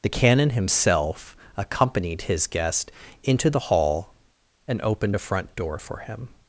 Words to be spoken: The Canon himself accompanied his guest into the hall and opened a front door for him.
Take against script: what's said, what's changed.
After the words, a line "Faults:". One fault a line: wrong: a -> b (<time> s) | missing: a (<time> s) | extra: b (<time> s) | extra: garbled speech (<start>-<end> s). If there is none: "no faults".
The Canon himself accompanied his guest into the hall and opened a front door for him.
Faults:
no faults